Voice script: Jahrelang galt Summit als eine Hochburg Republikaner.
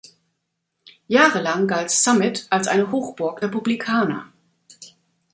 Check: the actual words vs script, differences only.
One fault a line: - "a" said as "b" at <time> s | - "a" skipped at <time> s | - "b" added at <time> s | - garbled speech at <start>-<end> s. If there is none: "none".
none